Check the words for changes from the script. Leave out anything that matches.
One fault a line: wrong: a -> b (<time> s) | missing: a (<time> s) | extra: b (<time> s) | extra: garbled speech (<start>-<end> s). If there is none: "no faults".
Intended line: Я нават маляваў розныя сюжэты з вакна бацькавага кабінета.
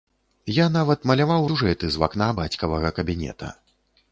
missing: розныя (1.4 s)